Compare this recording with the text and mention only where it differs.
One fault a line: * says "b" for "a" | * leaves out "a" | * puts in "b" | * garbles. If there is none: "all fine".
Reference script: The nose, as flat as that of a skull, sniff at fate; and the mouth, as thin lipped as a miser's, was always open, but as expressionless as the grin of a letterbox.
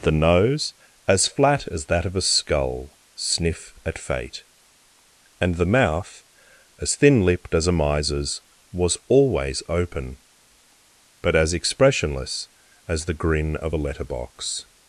all fine